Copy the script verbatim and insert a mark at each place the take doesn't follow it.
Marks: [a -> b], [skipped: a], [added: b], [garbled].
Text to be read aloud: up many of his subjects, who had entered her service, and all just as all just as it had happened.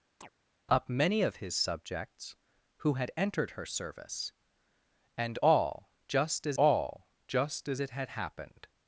up many of his subjects, who had entered her service, and all just as all just as it had happened.